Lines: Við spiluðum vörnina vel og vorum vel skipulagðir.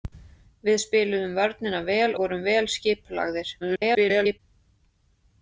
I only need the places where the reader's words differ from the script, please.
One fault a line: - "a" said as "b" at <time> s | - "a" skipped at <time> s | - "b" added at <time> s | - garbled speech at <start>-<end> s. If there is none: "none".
- "og" skipped at 2.1 s
- garbled speech at 3.6-4.4 s